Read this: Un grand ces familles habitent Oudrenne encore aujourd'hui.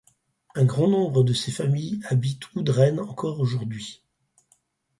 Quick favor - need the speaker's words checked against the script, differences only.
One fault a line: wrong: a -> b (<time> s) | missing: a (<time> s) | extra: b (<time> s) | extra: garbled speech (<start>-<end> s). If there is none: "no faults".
extra: nombre de (0.9 s)